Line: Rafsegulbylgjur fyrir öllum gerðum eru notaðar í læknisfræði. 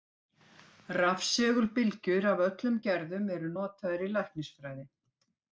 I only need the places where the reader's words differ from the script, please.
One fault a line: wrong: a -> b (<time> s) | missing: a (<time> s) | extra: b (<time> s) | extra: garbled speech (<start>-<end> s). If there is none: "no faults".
wrong: fyrir -> af (2.3 s)